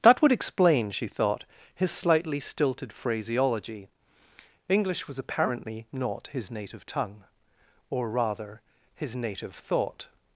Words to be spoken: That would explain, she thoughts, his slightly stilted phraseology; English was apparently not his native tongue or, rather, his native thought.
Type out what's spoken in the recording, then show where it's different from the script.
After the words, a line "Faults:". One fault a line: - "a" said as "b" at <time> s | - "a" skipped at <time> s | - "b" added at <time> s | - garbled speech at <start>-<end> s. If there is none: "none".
That would explain, she thought, his slightly stilted phraseology; English was apparently not his native tongue or, rather, his native thought.
Faults:
- "thoughts" said as "thought" at 1.1 s